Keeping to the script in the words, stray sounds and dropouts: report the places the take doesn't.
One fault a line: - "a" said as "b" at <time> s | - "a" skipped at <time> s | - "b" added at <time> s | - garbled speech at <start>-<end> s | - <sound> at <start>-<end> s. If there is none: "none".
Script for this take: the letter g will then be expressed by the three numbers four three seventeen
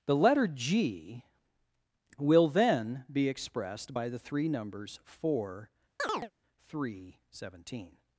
- chirp at 6.0-6.3 s